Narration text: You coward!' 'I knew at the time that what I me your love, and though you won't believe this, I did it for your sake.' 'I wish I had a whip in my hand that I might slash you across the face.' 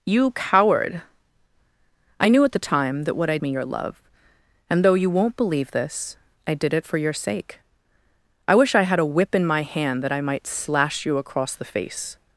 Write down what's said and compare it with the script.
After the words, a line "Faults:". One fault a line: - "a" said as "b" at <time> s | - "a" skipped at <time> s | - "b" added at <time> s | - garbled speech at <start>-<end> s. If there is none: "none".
You coward!' 'I knew at the time that what I me your love, and though you won't believe this, I did it for your sake.' 'I wish I had a whip in my hand that I might slash you across the face.'
Faults:
none